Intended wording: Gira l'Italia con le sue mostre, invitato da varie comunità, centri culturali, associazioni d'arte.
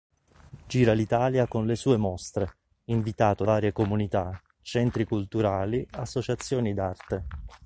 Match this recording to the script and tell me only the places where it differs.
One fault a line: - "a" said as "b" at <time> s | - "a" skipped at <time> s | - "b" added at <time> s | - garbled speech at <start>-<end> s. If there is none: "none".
- "da" skipped at 3.4 s